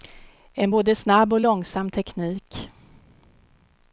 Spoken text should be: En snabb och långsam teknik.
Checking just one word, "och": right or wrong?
right